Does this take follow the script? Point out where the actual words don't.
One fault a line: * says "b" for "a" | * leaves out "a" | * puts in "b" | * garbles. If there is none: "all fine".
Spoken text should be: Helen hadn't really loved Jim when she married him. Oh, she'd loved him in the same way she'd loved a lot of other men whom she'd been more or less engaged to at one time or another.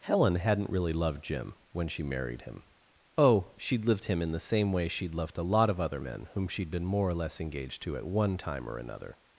* says "lived" for "loved"